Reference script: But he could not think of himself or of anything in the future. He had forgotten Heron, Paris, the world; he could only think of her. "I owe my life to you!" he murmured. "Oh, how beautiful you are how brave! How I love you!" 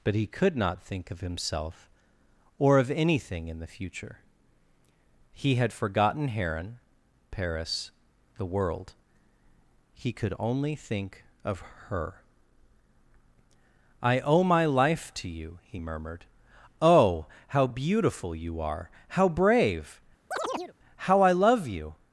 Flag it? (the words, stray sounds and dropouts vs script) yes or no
yes